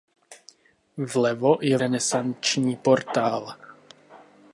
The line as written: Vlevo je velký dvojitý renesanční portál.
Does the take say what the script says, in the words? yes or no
no